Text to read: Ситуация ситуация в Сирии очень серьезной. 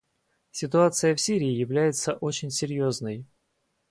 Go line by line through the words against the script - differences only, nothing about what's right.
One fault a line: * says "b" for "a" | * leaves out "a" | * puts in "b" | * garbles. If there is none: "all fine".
* leaves out "ситуация"
* puts in "является"